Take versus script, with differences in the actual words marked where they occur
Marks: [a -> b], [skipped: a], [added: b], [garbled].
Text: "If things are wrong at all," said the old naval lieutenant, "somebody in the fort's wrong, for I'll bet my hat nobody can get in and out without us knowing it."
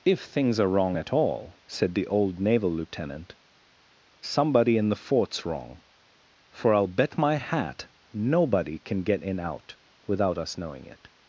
"If things are wrong at all," said the old naval lieutenant, "somebody in the fort's wrong, for I'll bet my hat nobody can get in [skipped: and] out without us knowing it."